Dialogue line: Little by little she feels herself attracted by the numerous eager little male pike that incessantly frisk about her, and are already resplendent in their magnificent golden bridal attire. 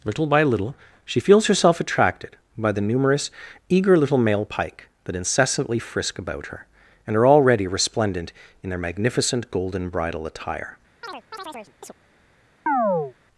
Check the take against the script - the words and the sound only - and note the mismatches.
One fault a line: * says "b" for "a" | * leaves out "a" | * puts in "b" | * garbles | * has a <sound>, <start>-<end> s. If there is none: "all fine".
* has a chirp, 11.0-11.9 s
* has a chirp, 12.7-13.1 s